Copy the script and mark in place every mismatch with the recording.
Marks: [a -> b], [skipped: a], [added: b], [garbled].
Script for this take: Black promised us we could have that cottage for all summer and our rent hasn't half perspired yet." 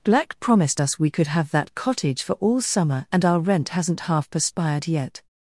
Black promised us we could have that cottage for all summer and our rent hasn't half perspired yet."